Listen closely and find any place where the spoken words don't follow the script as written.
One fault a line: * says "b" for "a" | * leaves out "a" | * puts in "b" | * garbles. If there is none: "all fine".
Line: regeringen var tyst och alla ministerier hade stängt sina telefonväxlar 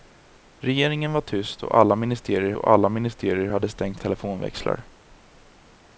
* puts in "och alla ministerier"
* leaves out "sina"